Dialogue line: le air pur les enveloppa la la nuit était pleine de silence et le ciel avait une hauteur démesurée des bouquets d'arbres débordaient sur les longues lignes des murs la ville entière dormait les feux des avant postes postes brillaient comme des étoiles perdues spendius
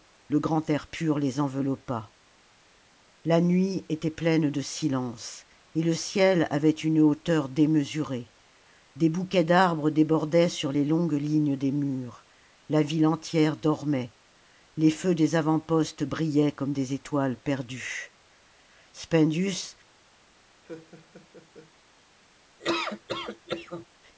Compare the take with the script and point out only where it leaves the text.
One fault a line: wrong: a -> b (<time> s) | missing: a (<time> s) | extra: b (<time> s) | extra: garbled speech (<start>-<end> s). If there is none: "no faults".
extra: grand (0.4 s)
missing: la (3.4 s)
missing: postes (16.0 s)